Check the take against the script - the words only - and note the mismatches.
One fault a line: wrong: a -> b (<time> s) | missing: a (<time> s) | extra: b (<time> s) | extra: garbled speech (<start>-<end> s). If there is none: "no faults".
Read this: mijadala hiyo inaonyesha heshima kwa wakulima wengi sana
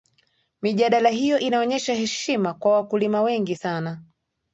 no faults